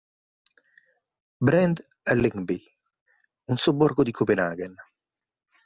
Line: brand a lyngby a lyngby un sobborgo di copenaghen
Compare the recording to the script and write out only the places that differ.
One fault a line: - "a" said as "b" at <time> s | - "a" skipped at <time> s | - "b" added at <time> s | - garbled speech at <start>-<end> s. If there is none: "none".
- "a lyngby" skipped at 2.6 s